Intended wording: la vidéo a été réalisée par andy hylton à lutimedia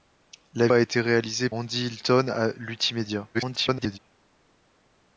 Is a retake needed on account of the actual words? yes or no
yes